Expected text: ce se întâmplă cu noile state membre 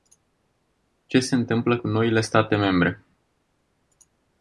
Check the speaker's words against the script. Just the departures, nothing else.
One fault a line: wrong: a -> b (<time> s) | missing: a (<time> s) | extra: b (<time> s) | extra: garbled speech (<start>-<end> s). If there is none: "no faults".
no faults